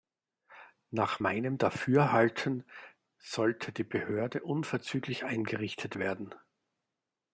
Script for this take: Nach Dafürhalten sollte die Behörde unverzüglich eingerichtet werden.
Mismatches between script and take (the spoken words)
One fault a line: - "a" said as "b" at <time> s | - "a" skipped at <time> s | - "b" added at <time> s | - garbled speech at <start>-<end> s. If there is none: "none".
- "meinem" added at 1.2 s